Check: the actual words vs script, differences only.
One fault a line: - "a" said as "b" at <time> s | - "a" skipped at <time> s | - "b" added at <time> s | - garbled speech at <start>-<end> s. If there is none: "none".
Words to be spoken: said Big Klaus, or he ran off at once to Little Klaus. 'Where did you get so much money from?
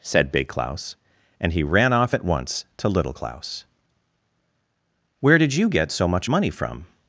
- "or" said as "and" at 1.4 s